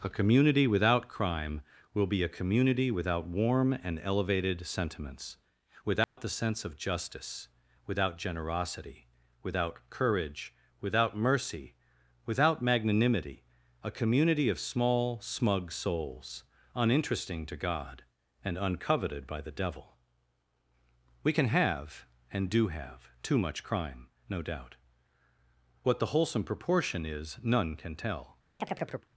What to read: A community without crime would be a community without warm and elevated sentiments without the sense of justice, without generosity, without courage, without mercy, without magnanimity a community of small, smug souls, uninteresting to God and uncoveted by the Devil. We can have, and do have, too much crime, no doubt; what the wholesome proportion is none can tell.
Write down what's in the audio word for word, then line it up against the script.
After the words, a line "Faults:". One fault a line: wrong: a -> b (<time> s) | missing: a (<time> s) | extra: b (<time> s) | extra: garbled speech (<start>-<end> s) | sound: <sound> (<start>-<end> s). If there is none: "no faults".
A community without crime will be a community without warm and elevated sentiments without the sense of justice, without generosity, without courage, without mercy, without magnanimity a community of small, smug souls, uninteresting to God and uncoveted by the Devil. We can have, and do have, too much crime, no doubt; what the wholesome proportion is none can tell.
Faults:
wrong: would -> will (1.9 s)
sound: dropout (6.0-6.2 s)
sound: chirp (28.6-29.1 s)